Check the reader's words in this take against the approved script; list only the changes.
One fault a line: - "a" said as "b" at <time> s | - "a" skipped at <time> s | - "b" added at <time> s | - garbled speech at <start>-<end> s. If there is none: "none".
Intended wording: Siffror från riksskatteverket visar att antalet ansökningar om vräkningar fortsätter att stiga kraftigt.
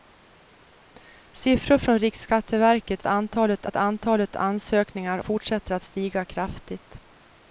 - "visar" said as "antalet" at 3.1 s
- "om vräkningar" skipped at 5.2 s